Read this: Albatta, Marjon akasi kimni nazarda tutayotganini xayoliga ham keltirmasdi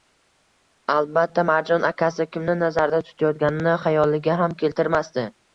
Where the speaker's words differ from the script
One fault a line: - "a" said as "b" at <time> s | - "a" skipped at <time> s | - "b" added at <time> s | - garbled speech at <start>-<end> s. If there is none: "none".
none